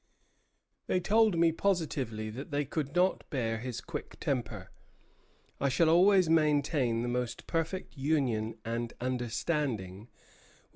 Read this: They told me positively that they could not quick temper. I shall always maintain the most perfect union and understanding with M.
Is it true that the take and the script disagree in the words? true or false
true